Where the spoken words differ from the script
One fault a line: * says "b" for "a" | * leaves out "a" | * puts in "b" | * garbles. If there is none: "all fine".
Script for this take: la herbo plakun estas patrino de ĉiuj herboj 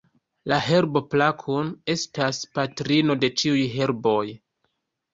all fine